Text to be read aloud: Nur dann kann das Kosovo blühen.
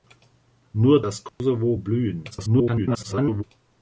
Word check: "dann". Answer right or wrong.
wrong